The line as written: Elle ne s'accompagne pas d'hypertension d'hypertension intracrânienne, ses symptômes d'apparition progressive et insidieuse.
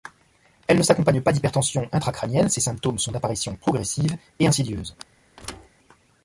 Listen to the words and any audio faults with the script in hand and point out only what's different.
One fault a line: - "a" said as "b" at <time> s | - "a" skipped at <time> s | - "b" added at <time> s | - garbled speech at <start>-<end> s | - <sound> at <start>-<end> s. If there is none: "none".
- "d'hypertension" skipped at 1.9 s
- "sont" added at 3.0 s
- thud at 5.4-5.7 s